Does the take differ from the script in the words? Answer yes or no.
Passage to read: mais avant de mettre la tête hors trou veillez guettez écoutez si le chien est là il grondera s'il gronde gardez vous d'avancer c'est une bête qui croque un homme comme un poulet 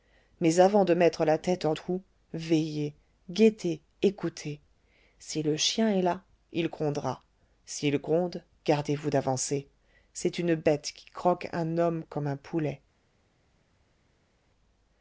no